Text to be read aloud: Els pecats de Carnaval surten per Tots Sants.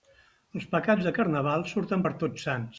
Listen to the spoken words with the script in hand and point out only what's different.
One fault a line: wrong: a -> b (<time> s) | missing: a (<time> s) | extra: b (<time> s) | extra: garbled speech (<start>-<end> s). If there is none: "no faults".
no faults